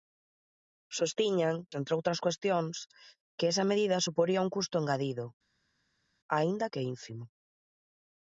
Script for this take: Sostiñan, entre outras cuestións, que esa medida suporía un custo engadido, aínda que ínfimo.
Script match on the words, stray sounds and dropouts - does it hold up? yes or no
yes